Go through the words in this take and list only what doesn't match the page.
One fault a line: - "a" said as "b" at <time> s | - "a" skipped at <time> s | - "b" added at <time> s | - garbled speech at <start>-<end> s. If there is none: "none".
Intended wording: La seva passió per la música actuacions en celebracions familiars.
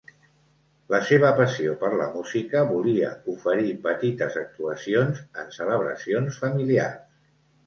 - "volia oferir petites" added at 2.7 s